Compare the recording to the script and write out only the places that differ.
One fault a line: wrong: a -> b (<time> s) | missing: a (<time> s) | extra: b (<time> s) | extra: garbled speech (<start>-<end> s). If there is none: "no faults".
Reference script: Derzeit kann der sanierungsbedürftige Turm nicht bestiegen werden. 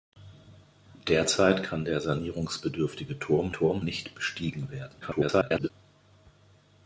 extra: Turm (3.5 s)
extra: garbled speech (5.0-5.7 s)